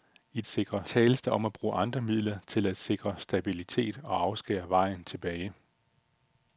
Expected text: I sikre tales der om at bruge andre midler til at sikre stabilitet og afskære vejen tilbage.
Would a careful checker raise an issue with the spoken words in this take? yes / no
no